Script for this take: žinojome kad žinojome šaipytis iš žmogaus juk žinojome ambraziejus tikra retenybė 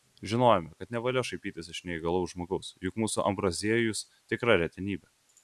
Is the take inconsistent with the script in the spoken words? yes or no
yes